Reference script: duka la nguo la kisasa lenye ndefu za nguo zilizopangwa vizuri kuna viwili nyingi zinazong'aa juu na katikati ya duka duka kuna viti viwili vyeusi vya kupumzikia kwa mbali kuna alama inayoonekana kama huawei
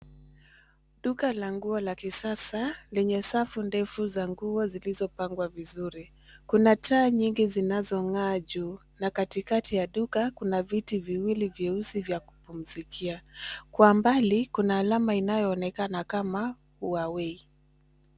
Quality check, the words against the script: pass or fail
fail